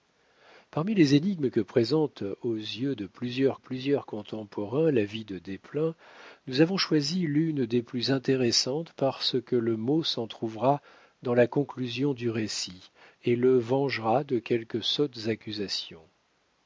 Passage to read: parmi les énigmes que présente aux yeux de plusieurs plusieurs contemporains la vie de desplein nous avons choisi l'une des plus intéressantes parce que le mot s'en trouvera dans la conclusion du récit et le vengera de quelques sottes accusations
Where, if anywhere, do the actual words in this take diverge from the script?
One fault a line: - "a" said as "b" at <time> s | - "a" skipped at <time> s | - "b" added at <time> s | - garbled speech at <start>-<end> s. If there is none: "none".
none